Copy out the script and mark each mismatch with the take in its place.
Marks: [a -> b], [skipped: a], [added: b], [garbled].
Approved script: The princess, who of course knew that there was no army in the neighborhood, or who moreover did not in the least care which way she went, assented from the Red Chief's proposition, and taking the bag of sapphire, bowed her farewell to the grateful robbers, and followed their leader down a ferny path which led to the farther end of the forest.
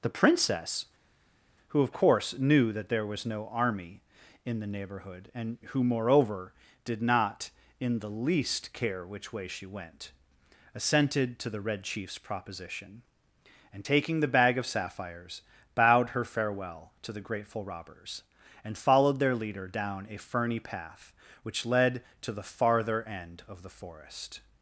The princess, who of course knew that there was no army in the neighborhood, [or -> and] who moreover did not in the least care which way she went, assented [from -> to] the Red Chief's proposition, and taking the bag of [sapphire, -> sapphires] bowed her farewell to the grateful robbers, and followed their leader down a ferny path which led to the farther end of the forest.